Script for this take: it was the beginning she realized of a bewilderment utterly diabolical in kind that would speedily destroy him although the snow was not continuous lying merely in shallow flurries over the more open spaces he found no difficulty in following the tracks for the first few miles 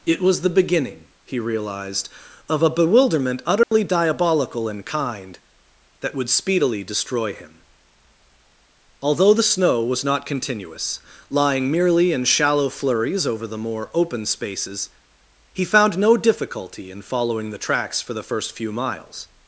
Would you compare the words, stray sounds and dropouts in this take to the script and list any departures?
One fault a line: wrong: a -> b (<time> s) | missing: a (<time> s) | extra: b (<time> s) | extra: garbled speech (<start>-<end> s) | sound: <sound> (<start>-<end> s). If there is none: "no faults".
wrong: she -> he (1.2 s)
sound: dropout (3.6-3.7 s)